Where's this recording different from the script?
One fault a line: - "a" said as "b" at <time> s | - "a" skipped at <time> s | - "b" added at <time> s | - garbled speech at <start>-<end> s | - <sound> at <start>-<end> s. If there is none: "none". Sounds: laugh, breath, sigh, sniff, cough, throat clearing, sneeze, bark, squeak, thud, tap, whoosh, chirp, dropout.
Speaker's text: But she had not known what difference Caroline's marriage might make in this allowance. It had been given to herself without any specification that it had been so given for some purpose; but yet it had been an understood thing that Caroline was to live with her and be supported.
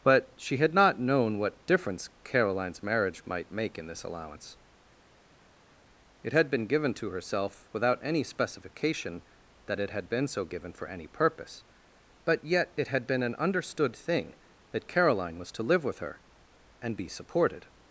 - "some" said as "any" at 10.9 s